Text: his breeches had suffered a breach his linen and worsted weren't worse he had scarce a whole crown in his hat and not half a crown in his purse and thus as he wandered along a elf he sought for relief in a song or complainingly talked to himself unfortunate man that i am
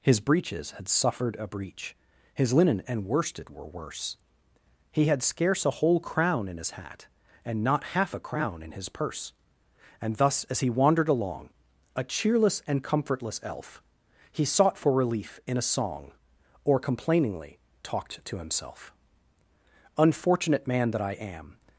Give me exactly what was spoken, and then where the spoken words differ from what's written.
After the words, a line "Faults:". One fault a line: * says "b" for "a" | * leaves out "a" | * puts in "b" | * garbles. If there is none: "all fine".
his breeches had suffered a breach his linen and worsted were worse he had scarce a whole crown in his hat and not half a crown in his purse and thus as he wandered along a cheerless and comfortless elf he sought for relief in a song or complainingly talked to himself unfortunate man that i am
Faults:
* says "were" for "weren't"
* puts in "cheerless and comfortless"